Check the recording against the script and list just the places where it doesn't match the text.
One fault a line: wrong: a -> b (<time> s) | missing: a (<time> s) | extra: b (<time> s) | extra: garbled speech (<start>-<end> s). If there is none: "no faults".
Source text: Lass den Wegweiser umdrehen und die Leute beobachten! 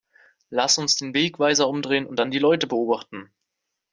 extra: uns (0.8 s)
extra: dann (2.2 s)